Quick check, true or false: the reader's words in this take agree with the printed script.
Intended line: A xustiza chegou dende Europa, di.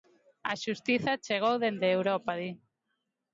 true